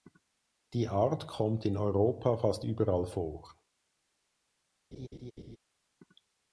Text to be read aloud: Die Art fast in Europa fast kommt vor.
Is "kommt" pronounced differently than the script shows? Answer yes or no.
yes